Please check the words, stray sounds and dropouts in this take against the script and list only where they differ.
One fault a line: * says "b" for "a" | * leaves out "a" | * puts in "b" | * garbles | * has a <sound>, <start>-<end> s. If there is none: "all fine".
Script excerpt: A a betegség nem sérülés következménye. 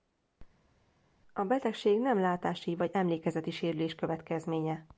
* leaves out "a"
* puts in "látási vagy emlékezeti"